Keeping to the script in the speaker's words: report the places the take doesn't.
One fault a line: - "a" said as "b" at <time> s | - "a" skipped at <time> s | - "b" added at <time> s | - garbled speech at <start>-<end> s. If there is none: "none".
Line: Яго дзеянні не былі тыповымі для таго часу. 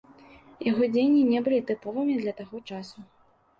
none